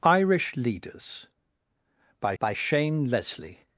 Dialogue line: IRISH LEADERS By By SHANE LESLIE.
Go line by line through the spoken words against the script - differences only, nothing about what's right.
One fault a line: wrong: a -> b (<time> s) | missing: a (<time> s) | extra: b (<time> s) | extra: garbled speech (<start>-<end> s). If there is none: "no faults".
no faults